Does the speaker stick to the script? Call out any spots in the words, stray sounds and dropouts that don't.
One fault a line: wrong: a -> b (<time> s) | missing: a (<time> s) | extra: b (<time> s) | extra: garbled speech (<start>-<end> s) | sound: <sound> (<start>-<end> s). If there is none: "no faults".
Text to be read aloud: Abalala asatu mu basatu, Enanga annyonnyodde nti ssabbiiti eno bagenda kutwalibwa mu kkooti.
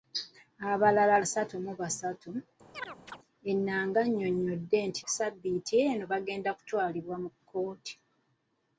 sound: chirp (2.7-3.2 s)